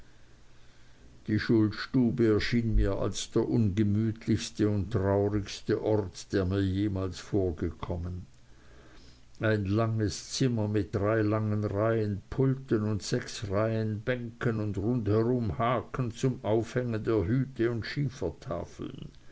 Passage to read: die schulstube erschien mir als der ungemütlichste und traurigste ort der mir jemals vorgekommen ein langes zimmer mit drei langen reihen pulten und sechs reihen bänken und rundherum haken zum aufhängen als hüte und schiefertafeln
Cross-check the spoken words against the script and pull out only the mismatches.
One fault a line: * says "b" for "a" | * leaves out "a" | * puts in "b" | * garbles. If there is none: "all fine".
* says "der" for "als"